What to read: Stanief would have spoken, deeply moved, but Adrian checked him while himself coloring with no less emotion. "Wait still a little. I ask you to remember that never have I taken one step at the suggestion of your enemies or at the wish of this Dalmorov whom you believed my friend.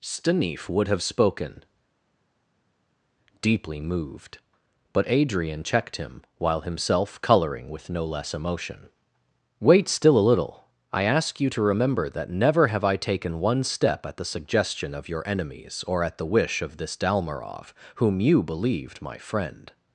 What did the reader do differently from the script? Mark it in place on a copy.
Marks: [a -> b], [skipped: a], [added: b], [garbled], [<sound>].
Stanief would have spoken, deeply moved, but Adrian checked him while himself coloring with no less emotion. "Wait still a little. I ask you to remember that never have I taken one step at the suggestion of your enemies or at the wish of this Dalmorov whom you believed my friend.